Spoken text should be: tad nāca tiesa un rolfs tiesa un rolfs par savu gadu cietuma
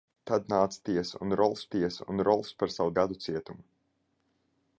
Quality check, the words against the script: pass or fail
pass